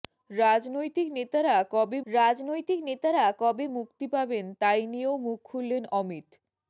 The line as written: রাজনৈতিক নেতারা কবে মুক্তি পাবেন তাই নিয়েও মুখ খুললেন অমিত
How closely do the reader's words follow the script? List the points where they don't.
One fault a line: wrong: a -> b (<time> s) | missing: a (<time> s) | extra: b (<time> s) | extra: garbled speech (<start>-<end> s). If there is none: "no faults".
extra: রাজনৈতিক নেতারা কবে (2.1 s)